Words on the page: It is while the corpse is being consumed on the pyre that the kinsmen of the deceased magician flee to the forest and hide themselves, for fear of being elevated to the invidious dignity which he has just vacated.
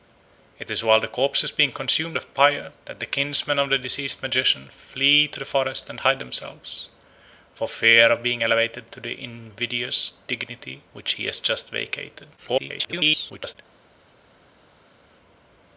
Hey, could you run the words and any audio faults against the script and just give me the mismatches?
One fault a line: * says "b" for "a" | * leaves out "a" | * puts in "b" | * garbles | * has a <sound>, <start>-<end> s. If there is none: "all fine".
* leaves out "on"
* garbles